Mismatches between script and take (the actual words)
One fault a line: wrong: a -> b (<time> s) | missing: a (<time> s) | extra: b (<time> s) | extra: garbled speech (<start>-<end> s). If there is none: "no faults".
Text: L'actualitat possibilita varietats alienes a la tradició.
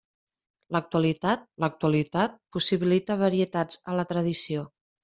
extra: l'actualitat (1.6 s)
missing: alienes (3.8 s)